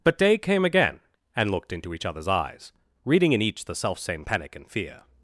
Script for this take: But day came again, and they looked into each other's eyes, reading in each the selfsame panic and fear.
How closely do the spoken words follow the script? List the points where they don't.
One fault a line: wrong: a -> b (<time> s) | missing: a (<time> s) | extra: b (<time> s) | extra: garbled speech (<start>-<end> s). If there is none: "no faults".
missing: they (1.5 s)